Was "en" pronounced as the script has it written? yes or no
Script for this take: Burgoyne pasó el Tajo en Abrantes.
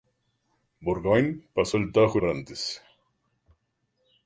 no